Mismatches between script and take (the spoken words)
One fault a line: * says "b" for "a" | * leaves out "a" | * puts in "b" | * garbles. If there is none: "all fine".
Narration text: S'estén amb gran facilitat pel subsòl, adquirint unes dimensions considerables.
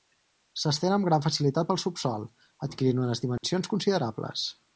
all fine